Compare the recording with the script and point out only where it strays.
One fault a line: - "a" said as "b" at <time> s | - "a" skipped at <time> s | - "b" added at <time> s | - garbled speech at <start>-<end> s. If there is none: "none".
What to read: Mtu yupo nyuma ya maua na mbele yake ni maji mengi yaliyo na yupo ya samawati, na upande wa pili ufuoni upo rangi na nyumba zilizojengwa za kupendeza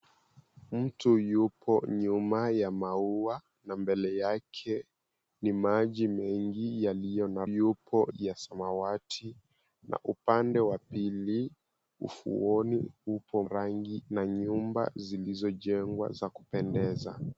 none